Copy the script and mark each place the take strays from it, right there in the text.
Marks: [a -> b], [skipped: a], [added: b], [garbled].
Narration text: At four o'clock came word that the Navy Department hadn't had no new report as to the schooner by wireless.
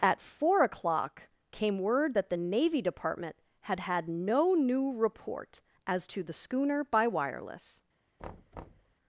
At four o'clock came word that the Navy Department [hadn't -> had] had no new report as to the schooner by wireless.